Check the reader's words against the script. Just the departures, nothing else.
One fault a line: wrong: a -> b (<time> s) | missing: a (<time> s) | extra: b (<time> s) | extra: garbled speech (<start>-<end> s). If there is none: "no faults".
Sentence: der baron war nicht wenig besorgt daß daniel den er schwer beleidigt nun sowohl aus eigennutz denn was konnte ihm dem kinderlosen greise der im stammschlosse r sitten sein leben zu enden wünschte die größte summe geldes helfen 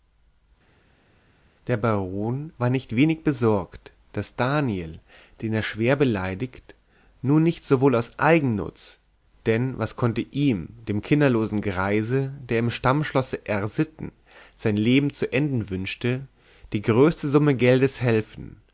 extra: nicht (7.4 s)